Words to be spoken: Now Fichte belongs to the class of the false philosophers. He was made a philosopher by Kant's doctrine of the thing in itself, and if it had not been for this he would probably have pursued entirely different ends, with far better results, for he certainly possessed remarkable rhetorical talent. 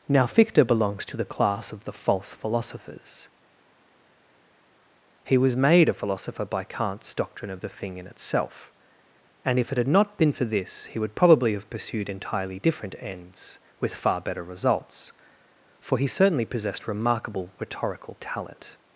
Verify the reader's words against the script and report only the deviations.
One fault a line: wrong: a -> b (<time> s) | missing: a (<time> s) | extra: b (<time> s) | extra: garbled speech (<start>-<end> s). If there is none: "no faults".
no faults